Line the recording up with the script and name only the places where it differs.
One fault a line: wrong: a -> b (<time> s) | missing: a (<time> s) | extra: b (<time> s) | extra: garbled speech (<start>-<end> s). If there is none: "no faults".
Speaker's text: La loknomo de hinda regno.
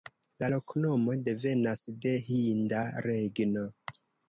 extra: devenas (1.2 s)